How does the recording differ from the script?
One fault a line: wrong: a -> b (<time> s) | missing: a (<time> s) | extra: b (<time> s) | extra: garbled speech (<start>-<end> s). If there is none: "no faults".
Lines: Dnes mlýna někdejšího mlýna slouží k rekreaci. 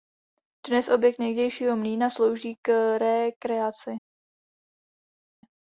wrong: mlýna -> objekt (0.9 s)